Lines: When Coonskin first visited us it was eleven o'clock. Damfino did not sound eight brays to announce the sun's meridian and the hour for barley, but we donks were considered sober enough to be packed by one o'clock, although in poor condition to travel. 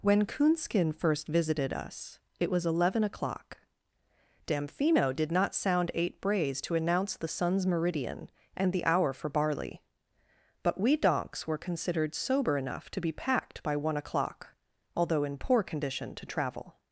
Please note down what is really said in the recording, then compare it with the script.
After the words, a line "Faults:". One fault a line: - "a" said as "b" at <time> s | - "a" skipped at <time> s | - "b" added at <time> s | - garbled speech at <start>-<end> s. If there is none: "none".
When Coonskin first visited us it was eleven o'clock. Damfino did not sound eight brays to announce the sun's meridian and the hour for barley, but we donks were considered sober enough to be packed by one o'clock, although in poor condition to travel.
Faults:
none